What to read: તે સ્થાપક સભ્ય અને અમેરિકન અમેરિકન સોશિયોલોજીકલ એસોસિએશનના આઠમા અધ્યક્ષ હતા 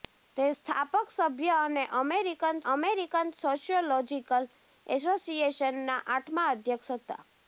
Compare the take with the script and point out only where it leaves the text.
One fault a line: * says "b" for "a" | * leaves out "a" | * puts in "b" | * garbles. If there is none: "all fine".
all fine